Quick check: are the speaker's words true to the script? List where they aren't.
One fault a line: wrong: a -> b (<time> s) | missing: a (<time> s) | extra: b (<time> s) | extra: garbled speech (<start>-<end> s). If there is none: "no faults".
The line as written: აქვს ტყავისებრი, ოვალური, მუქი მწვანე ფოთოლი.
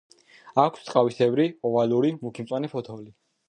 no faults